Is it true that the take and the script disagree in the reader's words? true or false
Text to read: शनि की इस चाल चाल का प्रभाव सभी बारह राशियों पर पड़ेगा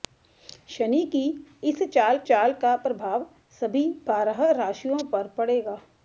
false